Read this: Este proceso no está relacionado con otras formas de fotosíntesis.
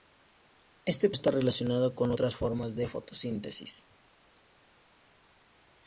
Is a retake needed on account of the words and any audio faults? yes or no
yes